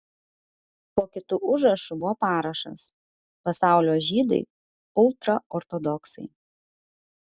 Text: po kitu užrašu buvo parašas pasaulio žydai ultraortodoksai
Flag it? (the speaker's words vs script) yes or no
no